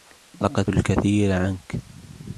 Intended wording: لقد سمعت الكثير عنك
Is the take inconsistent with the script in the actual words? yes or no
yes